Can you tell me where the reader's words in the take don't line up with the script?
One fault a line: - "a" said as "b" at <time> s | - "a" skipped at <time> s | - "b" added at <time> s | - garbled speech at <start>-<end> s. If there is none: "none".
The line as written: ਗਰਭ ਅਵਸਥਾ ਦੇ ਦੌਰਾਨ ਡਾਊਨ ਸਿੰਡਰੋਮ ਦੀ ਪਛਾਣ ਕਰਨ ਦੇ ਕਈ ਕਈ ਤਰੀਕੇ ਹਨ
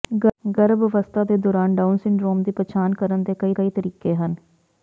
none